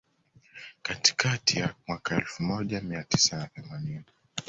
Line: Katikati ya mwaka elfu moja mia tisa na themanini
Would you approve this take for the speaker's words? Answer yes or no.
yes